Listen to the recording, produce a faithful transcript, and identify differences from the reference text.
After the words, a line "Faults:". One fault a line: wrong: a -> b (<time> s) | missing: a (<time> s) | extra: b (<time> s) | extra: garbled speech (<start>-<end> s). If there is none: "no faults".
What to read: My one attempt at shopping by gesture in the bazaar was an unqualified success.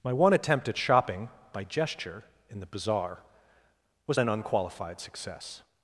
My one attempt at shopping by gesture in the bazaar was an unqualified success.
Faults:
no faults